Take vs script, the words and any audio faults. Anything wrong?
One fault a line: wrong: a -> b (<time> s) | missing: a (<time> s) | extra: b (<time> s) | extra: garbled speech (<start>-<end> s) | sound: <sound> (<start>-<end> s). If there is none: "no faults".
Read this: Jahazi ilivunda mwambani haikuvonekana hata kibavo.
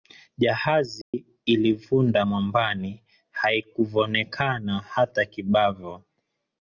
sound: dropout (1.0-1.1 s)